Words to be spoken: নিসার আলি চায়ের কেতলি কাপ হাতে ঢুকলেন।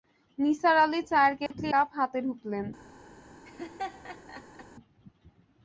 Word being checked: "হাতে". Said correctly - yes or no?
yes